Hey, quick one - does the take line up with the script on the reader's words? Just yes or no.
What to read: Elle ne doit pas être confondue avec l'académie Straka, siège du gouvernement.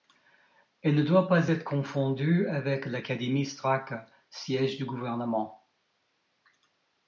yes